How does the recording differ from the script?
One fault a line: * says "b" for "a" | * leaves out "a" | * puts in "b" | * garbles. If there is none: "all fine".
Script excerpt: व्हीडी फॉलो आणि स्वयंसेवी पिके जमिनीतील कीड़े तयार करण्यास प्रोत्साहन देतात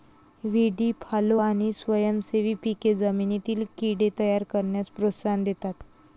all fine